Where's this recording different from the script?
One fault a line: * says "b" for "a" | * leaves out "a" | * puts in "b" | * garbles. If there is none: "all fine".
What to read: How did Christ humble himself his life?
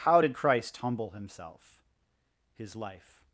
all fine